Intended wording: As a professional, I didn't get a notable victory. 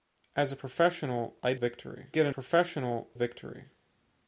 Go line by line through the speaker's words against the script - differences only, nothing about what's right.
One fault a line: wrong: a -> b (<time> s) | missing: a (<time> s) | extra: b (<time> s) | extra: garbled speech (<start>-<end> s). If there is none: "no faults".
wrong: didn't -> victory (1.6 s)
wrong: notable -> professional (2.3 s)